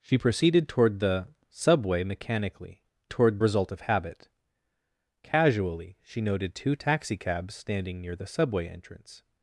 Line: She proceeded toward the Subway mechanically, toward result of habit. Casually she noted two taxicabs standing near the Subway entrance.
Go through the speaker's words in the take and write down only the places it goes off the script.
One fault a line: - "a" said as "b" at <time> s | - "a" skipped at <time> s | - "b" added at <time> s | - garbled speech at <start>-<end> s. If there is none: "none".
none